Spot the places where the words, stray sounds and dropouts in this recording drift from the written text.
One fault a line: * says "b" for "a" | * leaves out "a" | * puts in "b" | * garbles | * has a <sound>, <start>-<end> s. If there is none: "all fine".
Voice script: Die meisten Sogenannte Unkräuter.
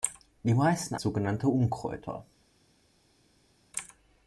all fine